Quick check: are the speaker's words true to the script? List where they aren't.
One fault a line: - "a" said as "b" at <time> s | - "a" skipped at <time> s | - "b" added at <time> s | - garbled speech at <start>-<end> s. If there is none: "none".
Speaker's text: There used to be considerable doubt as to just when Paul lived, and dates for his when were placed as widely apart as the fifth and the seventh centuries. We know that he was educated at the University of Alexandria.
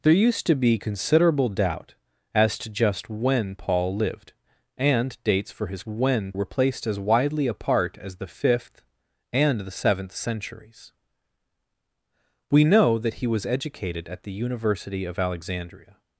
none